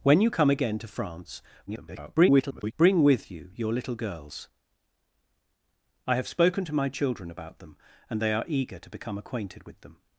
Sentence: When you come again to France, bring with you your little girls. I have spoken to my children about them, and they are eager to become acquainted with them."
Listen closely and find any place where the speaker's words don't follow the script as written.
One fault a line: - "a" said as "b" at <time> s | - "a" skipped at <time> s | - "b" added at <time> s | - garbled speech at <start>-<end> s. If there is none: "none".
- garbled speech at 1.7-2.7 s